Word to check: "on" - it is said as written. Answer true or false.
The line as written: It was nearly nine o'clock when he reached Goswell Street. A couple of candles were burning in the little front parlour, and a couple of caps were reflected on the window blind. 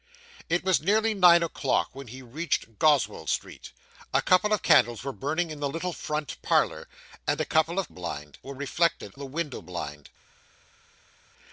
false